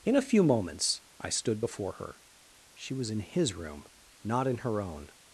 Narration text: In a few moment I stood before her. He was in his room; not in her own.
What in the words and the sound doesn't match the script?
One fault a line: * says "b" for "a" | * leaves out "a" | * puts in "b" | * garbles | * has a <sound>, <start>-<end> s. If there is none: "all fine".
* says "moments" for "moment"
* says "She" for "He"